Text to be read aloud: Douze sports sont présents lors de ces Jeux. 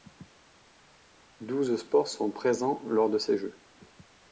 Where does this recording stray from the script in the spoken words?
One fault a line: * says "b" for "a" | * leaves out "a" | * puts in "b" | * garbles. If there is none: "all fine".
all fine